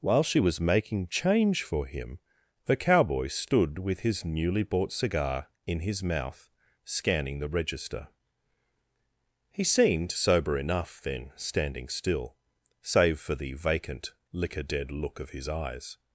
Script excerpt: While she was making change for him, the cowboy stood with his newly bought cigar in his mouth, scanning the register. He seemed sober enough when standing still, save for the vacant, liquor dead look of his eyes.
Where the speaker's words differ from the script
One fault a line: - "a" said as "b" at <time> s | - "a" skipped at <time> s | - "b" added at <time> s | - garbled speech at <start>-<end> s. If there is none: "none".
- "when" said as "then" at 11.0 s